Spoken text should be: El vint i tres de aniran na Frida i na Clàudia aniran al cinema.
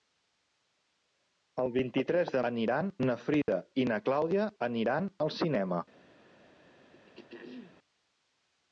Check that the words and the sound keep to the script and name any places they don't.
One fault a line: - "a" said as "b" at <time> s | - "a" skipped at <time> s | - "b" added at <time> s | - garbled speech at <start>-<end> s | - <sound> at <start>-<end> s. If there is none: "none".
- dropout at 3.4-3.5 s
- throat clearing at 6.9-7.8 s